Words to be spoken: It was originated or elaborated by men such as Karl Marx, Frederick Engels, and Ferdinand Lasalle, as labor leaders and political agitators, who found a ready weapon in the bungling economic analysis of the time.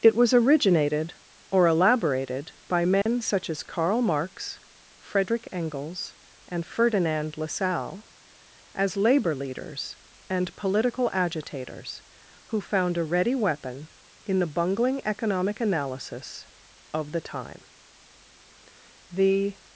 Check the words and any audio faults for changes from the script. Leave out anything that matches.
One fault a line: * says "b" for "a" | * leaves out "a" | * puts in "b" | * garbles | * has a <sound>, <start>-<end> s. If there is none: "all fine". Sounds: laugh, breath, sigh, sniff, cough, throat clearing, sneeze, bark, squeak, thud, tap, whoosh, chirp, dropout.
* has a dropout, 3.0-3.1 s
* puts in "The"